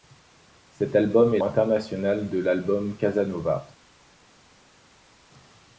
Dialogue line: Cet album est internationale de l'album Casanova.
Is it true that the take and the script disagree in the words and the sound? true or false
false